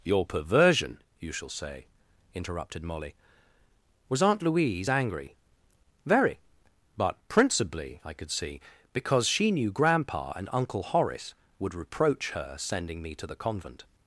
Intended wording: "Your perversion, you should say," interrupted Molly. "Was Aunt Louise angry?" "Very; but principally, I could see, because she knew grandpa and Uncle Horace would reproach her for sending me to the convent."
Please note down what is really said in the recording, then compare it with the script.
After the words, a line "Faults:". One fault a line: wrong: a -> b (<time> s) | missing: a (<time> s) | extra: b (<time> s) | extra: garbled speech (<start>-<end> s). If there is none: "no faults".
"Your perversion, you shall say," interrupted Molly. "Was Aunt Louise angry?" "Very; but principally, I could see, because she knew grandpa and Uncle Horace would reproach her sending me to the convent."
Faults:
wrong: should -> shall (1.3 s)
missing: for (12.6 s)